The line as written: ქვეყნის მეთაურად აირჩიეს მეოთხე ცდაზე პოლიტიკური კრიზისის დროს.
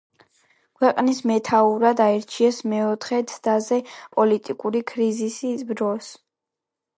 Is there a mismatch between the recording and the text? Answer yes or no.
no